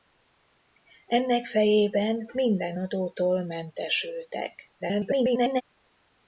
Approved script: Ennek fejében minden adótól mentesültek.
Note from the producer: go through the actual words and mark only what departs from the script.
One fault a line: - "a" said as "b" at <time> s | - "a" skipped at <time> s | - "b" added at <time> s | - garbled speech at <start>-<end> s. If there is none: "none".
- garbled speech at 4.8-5.6 s